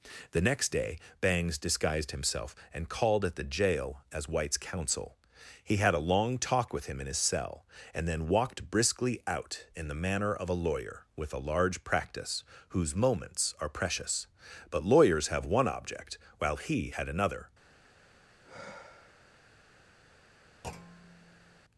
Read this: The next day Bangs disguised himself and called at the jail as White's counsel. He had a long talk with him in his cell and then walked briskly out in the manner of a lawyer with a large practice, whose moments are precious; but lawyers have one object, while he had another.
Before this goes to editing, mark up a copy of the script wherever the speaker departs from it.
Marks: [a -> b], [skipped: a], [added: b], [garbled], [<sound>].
The next day Bangs disguised himself and called at the jail as White's counsel. He had a long talk with him in his cell and then walked briskly out in the manner of a lawyer with a large practice, whose moments are precious; but lawyers have one object, while he had another. [sigh] [thud]